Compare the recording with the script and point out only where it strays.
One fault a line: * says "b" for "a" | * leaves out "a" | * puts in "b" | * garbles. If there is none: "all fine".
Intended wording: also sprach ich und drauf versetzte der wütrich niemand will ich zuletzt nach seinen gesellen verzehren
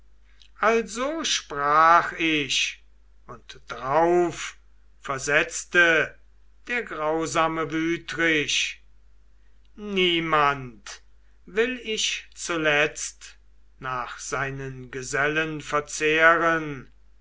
* puts in "grausame"